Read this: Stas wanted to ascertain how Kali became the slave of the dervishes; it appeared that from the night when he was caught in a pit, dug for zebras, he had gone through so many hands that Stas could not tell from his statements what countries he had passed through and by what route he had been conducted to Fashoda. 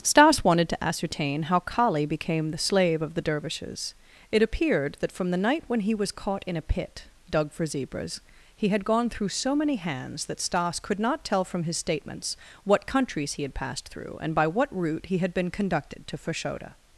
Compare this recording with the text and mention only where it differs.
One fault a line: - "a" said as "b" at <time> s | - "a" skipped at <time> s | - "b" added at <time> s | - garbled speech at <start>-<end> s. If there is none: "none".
none